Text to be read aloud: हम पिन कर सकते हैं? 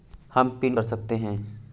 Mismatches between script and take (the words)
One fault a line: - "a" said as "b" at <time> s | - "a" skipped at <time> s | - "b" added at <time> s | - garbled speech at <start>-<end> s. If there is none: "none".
none